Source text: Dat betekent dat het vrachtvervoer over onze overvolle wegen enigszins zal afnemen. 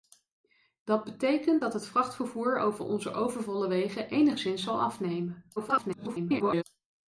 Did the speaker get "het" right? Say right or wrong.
right